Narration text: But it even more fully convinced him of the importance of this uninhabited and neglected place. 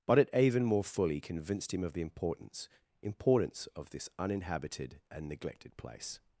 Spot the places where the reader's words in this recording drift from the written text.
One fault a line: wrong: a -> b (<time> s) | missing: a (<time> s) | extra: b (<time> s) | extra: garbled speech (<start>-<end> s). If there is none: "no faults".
extra: importance (3.0 s)